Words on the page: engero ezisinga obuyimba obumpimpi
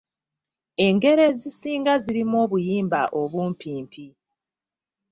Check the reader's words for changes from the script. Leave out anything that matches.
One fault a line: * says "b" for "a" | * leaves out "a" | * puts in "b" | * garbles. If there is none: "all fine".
* puts in "zirimu"